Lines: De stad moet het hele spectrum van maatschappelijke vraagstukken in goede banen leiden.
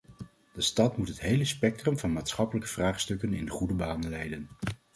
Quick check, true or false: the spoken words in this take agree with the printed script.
true